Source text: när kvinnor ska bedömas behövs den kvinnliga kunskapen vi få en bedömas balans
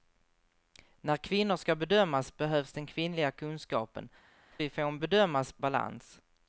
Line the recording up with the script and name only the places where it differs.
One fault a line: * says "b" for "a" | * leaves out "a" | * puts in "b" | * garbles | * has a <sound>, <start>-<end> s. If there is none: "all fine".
all fine